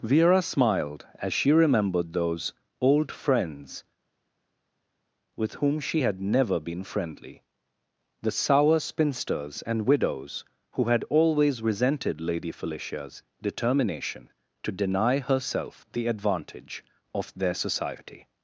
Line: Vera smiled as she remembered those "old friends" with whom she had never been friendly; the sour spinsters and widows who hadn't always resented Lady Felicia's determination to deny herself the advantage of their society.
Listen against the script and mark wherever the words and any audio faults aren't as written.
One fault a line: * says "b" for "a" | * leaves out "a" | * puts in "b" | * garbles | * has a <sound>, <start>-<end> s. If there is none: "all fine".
* says "had" for "hadn't"